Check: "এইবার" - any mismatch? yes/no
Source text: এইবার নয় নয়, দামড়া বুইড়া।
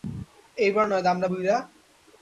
no